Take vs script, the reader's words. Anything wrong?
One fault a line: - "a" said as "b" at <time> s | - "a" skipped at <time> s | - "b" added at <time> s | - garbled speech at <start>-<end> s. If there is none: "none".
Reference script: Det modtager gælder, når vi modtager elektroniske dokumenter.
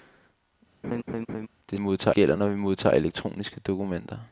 none